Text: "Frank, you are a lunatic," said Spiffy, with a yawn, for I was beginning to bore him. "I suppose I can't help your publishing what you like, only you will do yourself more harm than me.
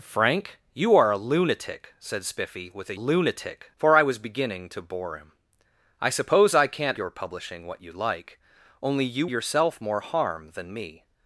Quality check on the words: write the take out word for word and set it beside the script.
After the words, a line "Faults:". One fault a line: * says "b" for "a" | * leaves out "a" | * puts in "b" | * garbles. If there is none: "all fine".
"Frank, you are a lunatic," said Spiffy, with a lunatic, for I was beginning to bore him. "I suppose I can't your publishing what you like, only you yourself more harm than me.
Faults:
* says "lunatic" for "yawn"
* leaves out "help"
* leaves out "will do"